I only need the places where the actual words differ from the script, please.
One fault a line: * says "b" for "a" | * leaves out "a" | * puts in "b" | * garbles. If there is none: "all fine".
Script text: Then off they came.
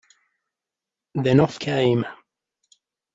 * leaves out "they"